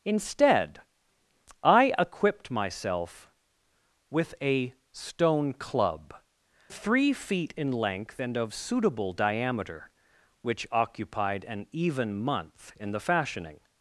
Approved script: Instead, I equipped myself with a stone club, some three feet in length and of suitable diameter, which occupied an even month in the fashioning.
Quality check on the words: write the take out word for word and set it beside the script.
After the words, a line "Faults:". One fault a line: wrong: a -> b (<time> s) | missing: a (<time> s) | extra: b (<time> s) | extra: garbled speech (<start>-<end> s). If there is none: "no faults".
Instead, I equipped myself with a stone club, three feet in length and of suitable diameter, which occupied an even month in the fashioning.
Faults:
missing: some (6.1 s)